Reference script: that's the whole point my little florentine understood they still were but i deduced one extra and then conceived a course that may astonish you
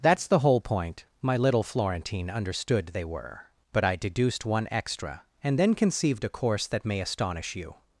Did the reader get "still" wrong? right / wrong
wrong